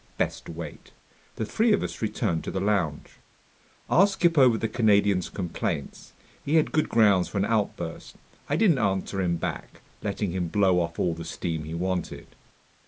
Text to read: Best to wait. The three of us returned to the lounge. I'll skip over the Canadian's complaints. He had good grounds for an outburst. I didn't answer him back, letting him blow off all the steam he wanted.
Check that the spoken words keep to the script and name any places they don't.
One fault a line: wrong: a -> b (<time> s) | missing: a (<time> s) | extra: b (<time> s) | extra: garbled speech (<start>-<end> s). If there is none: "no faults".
no faults